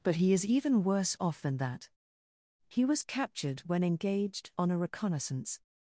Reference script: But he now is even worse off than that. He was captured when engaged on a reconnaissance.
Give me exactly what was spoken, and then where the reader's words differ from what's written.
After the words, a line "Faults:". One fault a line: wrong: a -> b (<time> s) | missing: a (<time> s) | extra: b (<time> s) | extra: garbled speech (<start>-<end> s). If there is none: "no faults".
But he is even worse off than that. He was captured when engaged on a reconnaissance.
Faults:
missing: now (0.3 s)